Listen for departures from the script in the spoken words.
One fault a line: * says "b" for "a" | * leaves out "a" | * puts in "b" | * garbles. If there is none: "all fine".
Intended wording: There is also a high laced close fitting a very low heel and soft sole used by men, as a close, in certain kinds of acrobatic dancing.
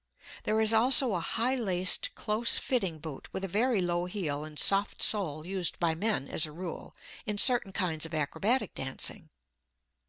* puts in "boot with"
* says "rule" for "close"